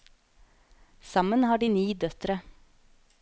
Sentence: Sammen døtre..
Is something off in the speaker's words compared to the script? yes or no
yes